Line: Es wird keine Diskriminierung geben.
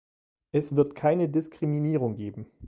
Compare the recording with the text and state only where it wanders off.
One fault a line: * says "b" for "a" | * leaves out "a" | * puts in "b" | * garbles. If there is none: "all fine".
all fine